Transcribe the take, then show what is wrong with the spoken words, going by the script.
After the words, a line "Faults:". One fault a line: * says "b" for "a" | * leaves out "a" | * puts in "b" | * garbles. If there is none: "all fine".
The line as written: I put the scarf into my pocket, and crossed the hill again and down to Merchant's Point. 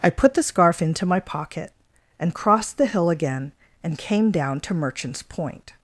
I put the scarf into my pocket, and crossed the hill again and came down to Merchant's Point.
Faults:
* puts in "came"